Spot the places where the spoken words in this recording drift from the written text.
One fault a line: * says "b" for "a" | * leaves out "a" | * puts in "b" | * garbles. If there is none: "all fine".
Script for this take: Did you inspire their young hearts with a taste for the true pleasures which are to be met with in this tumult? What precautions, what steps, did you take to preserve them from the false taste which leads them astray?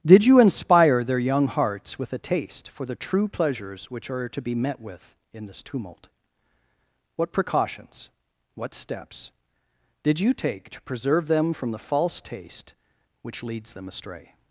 all fine